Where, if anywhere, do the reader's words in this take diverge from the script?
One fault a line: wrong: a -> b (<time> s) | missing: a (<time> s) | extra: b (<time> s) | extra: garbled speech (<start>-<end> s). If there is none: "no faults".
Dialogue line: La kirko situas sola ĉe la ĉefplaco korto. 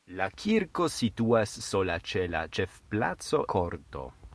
no faults